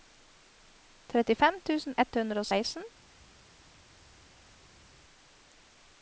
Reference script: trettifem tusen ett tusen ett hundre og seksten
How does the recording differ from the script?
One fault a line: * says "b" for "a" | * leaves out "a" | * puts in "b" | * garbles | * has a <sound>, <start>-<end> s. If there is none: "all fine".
* leaves out "tusen ett"